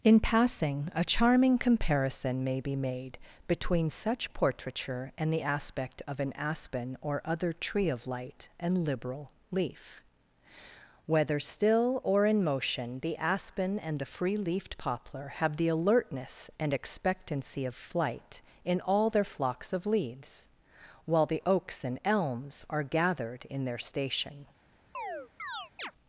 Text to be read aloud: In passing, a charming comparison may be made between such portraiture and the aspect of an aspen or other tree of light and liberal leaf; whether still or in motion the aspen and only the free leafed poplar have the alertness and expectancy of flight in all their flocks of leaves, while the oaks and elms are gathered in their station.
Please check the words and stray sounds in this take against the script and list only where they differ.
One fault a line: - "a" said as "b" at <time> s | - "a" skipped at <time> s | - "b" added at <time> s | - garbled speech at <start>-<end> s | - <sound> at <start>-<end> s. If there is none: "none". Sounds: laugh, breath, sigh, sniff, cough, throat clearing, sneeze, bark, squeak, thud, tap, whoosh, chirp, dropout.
- "only" skipped at 14.0 s
- chirp at 24.9-25.9 s